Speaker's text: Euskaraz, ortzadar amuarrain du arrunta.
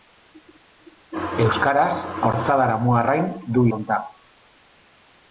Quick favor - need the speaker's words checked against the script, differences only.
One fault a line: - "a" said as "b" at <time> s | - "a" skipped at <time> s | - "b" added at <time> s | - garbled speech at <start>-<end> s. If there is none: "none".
none